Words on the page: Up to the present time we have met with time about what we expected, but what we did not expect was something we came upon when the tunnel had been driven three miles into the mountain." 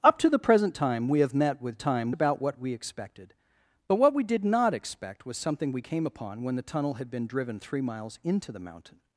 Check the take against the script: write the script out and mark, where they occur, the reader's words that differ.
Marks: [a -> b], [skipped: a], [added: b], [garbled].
Up to the present time we have met with time about what we expected, but what we did not expect was something we came upon when the tunnel had been driven three miles into the mountain."